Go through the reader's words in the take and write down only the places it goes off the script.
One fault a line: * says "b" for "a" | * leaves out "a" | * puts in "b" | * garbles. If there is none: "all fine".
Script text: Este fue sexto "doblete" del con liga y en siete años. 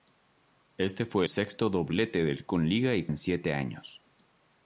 all fine